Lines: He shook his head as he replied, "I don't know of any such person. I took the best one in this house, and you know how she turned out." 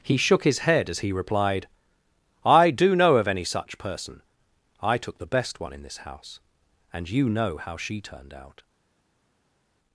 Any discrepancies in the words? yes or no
yes